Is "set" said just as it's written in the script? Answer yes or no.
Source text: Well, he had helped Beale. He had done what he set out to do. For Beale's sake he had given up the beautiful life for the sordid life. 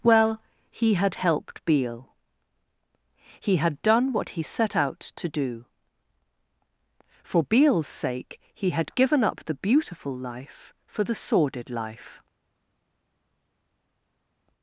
yes